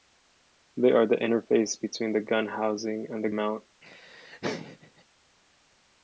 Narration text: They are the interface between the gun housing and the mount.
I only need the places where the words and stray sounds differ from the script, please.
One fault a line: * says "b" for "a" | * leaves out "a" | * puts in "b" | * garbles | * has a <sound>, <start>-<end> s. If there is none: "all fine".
* has a laugh, 3.8-5.0 s